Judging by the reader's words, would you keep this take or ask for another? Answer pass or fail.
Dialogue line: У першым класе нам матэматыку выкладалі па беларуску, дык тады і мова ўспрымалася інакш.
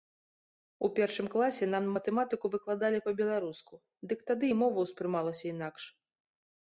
pass